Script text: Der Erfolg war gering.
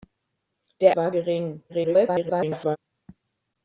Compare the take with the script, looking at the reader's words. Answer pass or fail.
fail